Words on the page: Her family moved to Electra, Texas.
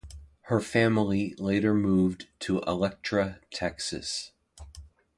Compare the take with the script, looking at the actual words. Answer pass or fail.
fail